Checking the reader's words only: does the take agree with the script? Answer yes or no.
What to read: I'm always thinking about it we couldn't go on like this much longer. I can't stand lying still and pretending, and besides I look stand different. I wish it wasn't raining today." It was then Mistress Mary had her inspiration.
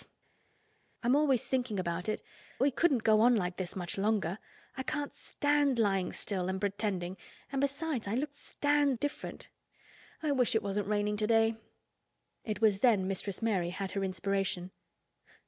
yes